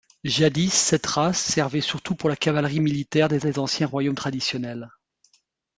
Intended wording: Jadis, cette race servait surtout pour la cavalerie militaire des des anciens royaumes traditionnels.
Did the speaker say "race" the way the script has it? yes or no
yes